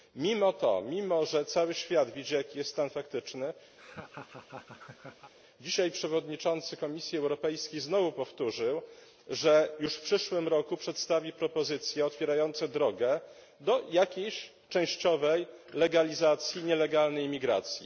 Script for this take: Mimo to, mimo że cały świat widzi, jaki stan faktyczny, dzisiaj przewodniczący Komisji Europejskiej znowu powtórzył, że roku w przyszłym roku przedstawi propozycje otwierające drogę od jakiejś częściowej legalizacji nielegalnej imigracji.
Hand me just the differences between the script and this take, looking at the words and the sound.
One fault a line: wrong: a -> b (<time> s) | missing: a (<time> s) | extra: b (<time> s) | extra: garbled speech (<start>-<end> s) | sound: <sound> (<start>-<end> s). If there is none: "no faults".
extra: jest (2.6 s)
sound: laugh (3.8-5.3 s)
wrong: roku -> już (9.8 s)
wrong: od -> do (13.6 s)